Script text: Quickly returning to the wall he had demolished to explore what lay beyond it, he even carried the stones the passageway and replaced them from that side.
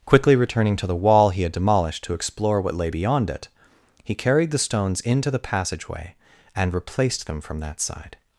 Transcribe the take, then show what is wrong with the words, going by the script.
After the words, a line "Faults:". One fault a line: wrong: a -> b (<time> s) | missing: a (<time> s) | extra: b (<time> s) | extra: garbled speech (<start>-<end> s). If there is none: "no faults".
Quickly returning to the wall he had demolished to explore what lay beyond it, he carried the stones into the passageway and replaced them from that side.
Faults:
missing: even (4.2 s)
extra: into (5.0 s)